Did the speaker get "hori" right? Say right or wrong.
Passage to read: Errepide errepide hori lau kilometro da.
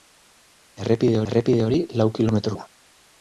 right